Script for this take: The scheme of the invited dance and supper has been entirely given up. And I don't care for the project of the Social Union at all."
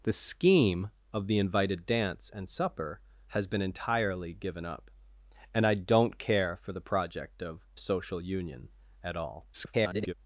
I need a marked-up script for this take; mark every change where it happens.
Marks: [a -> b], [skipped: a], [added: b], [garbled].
The scheme of the invited dance and supper has been entirely given up. And I don't care for the project of [skipped: the] Social Union at all." [garbled]